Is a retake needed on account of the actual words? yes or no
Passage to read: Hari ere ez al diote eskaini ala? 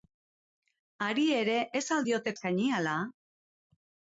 no